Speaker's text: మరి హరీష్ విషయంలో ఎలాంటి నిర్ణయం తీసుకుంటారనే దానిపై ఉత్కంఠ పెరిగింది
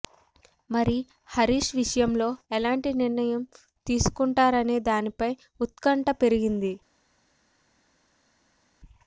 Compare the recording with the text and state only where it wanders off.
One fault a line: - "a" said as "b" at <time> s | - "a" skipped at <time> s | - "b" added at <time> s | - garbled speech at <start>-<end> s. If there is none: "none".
none